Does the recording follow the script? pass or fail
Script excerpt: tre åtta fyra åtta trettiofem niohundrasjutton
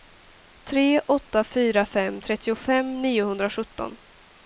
fail